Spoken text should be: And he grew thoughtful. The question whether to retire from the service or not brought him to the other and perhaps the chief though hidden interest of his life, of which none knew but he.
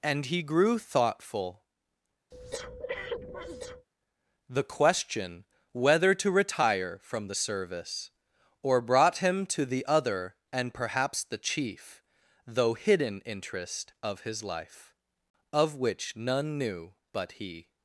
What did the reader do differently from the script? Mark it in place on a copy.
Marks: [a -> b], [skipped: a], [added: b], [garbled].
And he grew thoughtful. The question whether to retire from the service or [skipped: not] brought him to the other and perhaps the chief though hidden interest of his life, of which none knew but he.